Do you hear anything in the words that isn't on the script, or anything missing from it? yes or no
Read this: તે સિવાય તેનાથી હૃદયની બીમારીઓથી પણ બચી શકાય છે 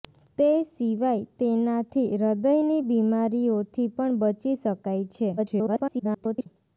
yes